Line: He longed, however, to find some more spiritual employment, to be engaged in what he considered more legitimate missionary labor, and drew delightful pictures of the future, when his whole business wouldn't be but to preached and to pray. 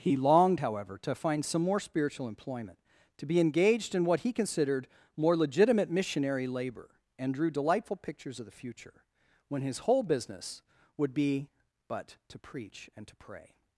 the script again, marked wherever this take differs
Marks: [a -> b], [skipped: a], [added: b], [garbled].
He longed, however, to find some more spiritual employment, to be engaged in what he considered more legitimate missionary labor, and drew delightful pictures of the future, when his whole business [wouldn't -> would] be but to [preached -> preach] and to pray.